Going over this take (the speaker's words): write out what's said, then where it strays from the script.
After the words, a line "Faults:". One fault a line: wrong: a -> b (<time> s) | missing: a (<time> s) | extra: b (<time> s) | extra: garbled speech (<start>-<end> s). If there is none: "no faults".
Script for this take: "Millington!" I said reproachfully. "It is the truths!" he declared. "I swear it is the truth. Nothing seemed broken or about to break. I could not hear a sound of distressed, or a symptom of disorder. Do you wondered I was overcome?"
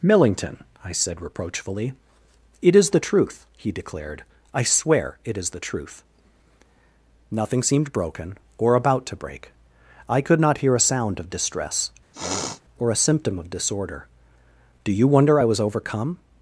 "Millington!" I said reproachfully. "It is the truth!" he declared. "I swear it is the truth. Nothing seemed broken or about to break. I could not hear a sound of distress, or a symptom of disorder. Do you wonder I was overcome?"
Faults:
wrong: truths -> truth (3.0 s)
wrong: distressed -> distress (11.3 s)
wrong: wondered -> wonder (15.1 s)